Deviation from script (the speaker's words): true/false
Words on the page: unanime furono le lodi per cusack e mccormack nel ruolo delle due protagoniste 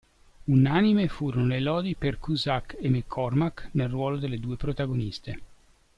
false